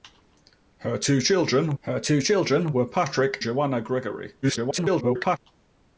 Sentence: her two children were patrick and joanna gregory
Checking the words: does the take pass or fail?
fail